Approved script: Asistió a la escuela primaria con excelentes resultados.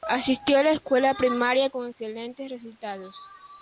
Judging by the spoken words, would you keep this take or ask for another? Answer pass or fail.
pass